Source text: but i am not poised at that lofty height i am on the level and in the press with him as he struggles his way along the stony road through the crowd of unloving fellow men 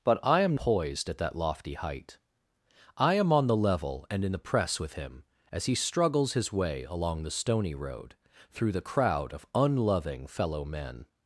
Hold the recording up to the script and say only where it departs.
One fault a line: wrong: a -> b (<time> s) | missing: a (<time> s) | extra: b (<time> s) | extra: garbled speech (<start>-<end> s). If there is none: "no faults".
missing: not (0.6 s)